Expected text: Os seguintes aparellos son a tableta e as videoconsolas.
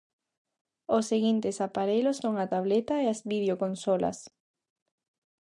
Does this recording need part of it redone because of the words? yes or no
no